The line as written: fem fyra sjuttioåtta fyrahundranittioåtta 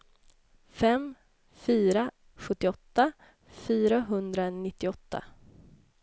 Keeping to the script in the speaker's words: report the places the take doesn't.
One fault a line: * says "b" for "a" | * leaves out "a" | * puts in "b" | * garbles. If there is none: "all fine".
all fine